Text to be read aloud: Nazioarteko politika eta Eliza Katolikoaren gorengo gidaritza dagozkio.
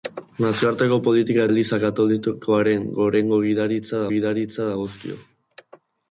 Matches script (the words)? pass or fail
fail